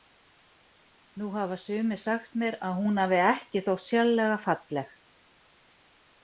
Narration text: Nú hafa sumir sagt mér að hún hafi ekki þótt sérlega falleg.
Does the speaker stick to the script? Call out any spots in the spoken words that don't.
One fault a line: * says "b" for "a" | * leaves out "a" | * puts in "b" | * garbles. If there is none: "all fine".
all fine